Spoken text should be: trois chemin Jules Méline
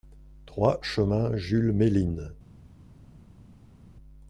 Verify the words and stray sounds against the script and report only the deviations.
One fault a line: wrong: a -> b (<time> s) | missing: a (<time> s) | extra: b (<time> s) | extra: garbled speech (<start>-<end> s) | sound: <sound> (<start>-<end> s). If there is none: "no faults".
no faults